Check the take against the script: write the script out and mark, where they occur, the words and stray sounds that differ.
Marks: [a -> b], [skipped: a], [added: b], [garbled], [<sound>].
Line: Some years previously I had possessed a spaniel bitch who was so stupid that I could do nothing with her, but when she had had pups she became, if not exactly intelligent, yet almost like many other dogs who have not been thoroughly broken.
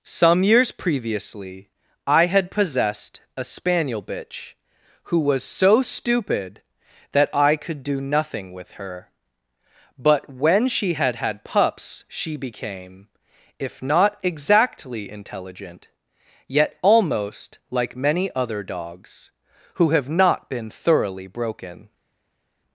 Some years previously I had possessed a spaniel bitch who was so stupid that I could do nothing with her, but when she had had pups she became, if not exactly intelligent, yet almost like many other dogs who have not been thoroughly broken.